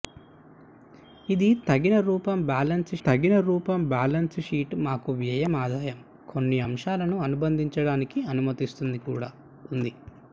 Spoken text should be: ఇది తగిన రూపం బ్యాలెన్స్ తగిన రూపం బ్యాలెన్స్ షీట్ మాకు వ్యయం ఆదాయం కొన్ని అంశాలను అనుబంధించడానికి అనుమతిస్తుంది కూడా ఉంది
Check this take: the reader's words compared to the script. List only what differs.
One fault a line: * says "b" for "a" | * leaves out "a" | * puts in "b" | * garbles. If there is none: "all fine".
all fine